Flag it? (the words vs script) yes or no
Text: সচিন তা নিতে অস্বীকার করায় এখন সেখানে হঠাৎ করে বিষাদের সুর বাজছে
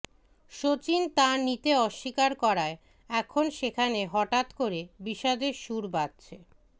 no